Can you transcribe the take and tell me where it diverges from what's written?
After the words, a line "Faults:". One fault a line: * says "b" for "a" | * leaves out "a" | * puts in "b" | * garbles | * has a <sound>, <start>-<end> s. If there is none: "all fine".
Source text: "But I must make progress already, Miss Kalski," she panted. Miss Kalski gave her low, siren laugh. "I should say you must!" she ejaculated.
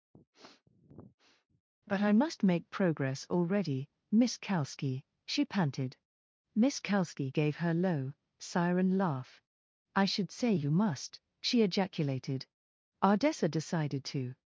"But I must make progress already, Miss Kalski," she panted. Miss Kalski gave her low, siren laugh. "I should say you must!" she ejaculated. Ardessa decided to
Faults:
* has a sniff, 0.1-1.6 s
* puts in "Ardessa decided to"